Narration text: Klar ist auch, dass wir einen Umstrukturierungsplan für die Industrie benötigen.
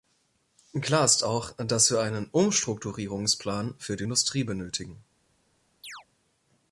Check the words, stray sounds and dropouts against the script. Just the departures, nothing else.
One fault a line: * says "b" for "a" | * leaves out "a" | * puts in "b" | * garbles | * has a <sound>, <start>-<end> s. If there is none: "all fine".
* has a chirp, 5.8-6.1 s